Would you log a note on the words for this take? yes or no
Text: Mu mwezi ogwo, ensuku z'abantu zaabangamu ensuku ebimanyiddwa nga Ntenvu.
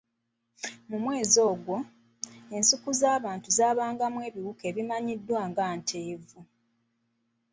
yes